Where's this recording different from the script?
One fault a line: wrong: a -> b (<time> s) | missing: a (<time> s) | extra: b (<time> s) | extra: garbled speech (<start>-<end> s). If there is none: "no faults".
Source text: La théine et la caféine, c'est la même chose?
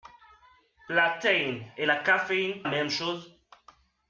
missing: c'est la (2.6 s)